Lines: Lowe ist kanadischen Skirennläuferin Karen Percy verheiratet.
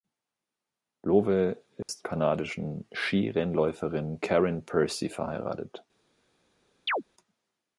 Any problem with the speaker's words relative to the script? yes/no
no